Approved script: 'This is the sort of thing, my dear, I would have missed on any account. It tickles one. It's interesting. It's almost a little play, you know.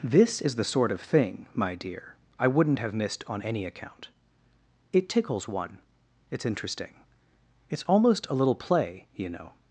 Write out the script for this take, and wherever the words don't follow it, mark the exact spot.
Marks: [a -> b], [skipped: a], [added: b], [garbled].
'This is the sort of thing, my dear, I [would -> wouldn't] have missed on any account. It tickles one. It's interesting. It's almost a little play, you know.